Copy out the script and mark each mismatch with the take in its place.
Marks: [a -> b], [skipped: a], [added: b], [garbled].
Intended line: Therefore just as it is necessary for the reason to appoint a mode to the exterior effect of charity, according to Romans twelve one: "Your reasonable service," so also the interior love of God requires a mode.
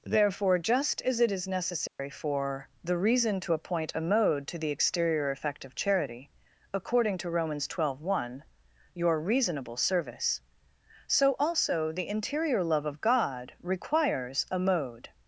Therefore just as it is necessary for the reason to appoint a mode to the exterior effect of charity, according to Romans twelve one: "Your reasonable service," so also the interior love of God requires a mode.